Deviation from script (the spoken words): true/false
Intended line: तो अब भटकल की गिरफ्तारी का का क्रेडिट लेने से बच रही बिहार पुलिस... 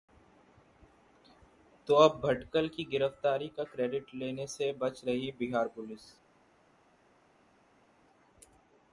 true